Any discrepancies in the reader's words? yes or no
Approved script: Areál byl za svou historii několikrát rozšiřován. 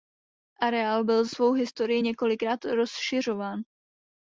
yes